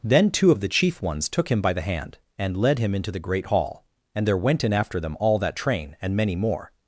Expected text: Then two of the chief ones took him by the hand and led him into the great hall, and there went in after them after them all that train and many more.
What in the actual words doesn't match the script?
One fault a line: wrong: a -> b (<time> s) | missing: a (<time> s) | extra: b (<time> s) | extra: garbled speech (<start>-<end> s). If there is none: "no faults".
missing: after them (5.2 s)